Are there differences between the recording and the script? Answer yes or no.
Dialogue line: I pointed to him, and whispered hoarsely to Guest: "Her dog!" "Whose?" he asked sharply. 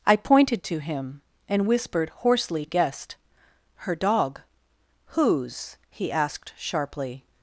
yes